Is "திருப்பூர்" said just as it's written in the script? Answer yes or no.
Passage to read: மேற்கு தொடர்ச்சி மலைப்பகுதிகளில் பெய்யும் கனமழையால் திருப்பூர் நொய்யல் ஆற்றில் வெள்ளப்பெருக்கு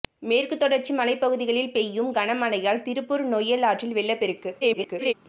yes